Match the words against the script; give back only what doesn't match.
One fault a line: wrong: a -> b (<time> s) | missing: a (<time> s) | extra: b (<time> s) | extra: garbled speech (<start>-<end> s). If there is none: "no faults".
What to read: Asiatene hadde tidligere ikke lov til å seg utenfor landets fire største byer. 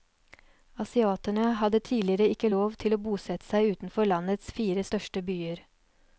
extra: bosette (3.1 s)